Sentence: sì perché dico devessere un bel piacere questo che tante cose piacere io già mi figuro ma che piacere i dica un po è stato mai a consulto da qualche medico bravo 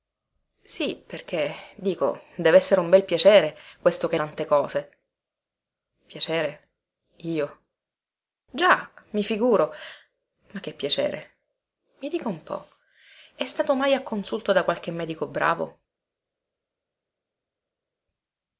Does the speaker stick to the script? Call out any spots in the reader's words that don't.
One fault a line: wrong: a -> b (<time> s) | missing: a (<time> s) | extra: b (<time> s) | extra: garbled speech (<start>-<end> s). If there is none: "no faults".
no faults